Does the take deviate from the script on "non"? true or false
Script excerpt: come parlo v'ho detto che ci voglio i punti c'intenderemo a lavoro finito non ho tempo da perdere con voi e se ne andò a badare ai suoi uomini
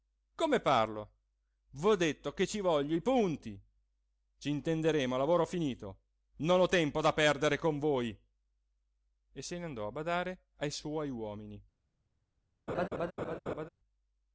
false